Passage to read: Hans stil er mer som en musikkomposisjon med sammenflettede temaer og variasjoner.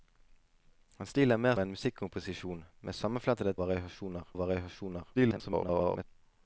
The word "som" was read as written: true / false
false